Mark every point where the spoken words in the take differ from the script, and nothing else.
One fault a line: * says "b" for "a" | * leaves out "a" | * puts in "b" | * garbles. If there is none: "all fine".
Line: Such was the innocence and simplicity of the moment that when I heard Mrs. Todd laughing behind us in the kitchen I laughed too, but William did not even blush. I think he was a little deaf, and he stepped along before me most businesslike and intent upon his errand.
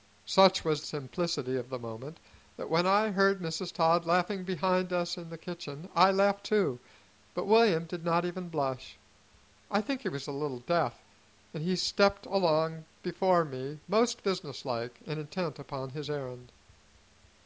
* leaves out "the innocence and"